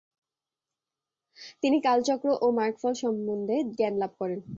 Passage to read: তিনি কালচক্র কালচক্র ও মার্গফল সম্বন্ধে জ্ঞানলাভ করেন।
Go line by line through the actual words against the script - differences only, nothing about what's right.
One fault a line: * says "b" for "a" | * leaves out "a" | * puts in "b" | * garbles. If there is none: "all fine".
* leaves out "কালচক্র"